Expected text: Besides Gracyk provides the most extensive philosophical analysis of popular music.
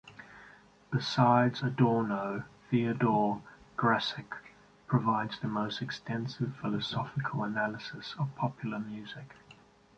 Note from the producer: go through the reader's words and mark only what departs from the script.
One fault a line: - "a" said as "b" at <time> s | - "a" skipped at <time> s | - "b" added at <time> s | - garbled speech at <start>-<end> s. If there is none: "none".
- "Adorno Theodore" added at 1.6 s